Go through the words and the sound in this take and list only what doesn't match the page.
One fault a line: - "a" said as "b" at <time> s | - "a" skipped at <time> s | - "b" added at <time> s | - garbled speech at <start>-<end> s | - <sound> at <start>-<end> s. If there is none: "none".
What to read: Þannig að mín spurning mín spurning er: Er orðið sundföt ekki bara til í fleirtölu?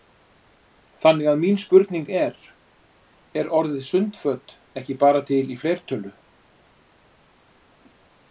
- "mín spurning" skipped at 2.1 s